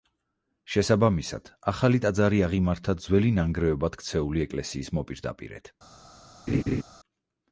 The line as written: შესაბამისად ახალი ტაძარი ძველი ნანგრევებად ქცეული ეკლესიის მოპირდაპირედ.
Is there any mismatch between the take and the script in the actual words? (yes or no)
yes